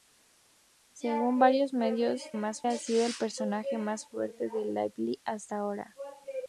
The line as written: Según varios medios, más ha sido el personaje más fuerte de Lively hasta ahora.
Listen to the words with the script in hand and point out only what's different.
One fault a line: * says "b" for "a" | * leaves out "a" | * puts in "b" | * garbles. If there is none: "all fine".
all fine